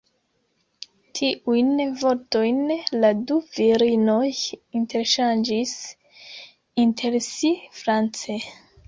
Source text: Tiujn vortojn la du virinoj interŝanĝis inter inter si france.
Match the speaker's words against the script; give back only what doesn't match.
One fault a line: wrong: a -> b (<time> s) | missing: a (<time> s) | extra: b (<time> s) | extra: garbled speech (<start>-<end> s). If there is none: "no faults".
missing: inter (7.2 s)